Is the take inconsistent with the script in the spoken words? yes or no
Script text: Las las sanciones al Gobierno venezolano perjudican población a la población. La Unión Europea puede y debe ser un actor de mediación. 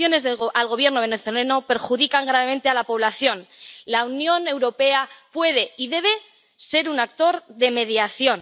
yes